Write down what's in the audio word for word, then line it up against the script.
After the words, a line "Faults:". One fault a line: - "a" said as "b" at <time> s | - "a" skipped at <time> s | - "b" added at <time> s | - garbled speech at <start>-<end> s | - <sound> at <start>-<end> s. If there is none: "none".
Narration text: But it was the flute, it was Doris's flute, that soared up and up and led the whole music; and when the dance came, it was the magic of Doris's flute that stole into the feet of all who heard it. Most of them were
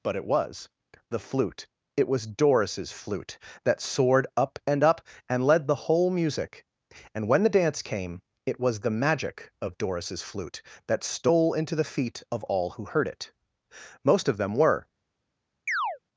But it was the flute, it was Doris's flute, that soared up and up and led the whole music; and when the dance came, it was the magic of Doris's flute that stole into the feet of all who heard it. Most of them were
Faults:
- chirp at 15.7-16.0 s